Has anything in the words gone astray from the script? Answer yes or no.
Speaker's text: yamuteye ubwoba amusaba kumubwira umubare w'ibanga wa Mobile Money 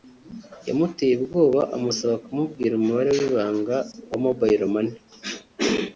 no